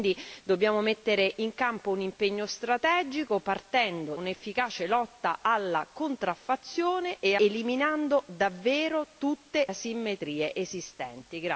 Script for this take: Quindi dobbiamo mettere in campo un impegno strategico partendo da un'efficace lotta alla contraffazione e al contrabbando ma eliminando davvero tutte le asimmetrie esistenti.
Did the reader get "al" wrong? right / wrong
wrong